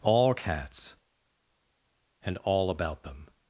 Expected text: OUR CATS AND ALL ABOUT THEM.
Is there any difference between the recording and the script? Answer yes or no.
yes